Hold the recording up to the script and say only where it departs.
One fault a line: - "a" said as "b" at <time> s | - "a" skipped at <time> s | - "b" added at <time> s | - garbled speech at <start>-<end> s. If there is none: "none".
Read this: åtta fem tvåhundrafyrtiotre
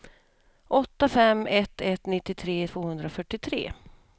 - "ett ett nittiotre" added at 1.4 s